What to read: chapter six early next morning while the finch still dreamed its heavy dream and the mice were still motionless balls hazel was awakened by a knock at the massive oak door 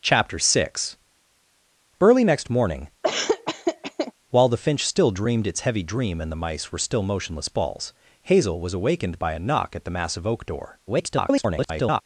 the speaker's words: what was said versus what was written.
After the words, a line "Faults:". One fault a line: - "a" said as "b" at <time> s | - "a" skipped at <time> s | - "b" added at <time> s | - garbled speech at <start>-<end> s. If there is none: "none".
chapter six early next morning while the finch still dreamed its heavy dream and the mice were still motionless balls hazel was awakened by a knock at the massive oak door [garbled]
Faults:
- garbled speech at 10.9-12.0 s